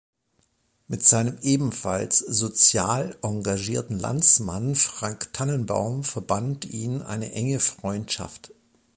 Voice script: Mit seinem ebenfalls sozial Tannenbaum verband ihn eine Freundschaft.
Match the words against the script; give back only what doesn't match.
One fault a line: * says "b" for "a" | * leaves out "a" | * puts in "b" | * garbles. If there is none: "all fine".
* puts in "engagierten Landsmann Frank"
* puts in "enge"